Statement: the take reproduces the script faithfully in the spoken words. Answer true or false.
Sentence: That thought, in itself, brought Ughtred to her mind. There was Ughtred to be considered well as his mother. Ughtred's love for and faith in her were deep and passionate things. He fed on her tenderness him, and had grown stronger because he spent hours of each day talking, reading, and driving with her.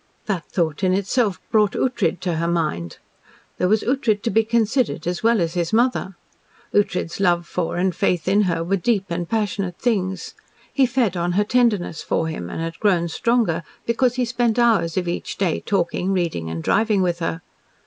false